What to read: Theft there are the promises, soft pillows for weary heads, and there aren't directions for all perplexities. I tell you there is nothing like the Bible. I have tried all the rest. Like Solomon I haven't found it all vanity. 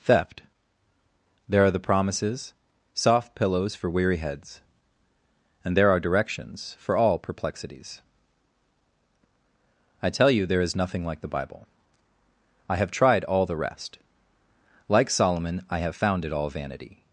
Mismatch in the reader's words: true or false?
true